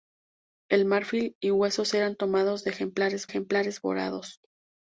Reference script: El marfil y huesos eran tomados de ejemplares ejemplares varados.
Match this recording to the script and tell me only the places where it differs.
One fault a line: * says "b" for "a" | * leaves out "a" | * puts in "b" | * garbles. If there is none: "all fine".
all fine